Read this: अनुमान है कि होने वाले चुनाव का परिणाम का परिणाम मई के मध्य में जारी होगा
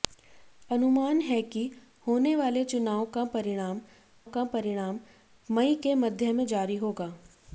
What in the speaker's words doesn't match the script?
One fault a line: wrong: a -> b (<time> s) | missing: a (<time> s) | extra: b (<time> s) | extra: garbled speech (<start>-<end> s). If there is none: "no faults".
no faults